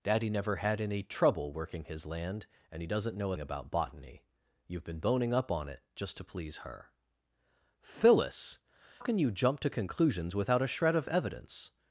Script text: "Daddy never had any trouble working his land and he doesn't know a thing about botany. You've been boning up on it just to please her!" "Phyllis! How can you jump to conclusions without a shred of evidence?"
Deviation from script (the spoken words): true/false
true